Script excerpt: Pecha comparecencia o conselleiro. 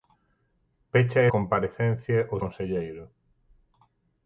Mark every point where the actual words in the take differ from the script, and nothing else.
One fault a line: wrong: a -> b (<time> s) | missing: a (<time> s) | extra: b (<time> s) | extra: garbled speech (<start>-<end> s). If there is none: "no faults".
no faults